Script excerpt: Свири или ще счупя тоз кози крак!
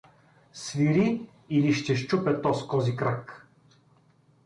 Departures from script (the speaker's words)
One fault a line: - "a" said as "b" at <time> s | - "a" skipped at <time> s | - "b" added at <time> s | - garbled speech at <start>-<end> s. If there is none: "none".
none